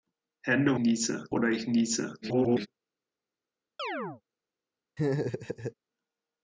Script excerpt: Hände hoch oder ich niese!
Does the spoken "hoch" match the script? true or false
false